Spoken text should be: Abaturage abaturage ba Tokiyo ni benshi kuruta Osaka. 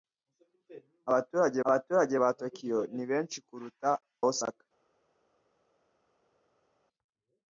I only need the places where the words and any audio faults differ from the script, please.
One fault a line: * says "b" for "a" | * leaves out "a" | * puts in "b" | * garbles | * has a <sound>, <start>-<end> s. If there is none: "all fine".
all fine